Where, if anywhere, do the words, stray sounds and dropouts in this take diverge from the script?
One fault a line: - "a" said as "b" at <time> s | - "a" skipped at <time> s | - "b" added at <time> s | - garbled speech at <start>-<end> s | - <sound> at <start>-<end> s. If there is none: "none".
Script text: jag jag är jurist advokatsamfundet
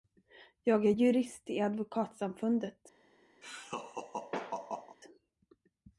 - "jag" skipped at 0.8 s
- "i" added at 1.5 s
- laugh at 3.4-5.0 s